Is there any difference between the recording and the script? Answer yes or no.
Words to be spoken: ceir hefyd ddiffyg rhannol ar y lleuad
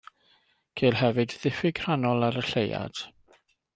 no